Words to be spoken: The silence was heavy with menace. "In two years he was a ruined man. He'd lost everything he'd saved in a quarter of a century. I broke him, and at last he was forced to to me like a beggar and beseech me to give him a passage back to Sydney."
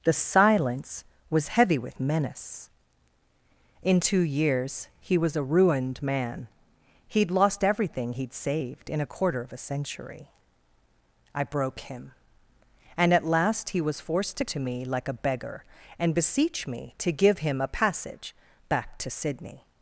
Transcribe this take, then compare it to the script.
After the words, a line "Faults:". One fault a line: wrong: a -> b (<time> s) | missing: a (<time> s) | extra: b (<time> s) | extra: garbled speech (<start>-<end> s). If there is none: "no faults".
The silence was heavy with menace. "In two years he was a ruined man. He'd lost everything he'd saved in a quarter of a century. I broke him, and at last he was forced to to me like a beggar and beseech me to give him a passage back to Sydney."
Faults:
no faults